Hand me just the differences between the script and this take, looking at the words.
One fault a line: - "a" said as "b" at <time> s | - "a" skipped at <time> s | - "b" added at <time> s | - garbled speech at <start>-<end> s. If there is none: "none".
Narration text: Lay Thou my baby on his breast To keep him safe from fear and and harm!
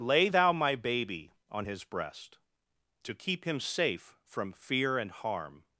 - "and" skipped at 5.1 s